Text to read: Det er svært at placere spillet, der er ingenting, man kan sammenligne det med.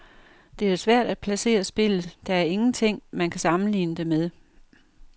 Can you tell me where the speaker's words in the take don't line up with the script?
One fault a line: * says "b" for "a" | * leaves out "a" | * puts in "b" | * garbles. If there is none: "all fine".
all fine